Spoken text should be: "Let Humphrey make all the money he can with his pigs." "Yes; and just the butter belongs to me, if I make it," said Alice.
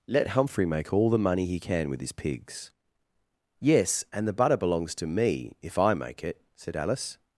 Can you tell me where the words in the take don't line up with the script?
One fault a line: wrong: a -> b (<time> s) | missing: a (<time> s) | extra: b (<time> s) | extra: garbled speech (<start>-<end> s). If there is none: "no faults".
missing: just (4.3 s)